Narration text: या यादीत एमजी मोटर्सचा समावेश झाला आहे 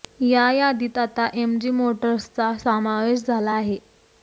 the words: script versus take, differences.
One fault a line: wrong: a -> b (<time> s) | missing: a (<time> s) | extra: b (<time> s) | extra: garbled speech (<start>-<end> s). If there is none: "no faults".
extra: आता (1.0 s)